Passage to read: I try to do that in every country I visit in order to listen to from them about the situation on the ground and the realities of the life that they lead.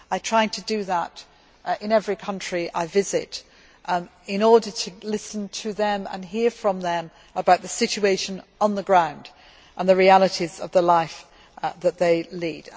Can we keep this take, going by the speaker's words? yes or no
no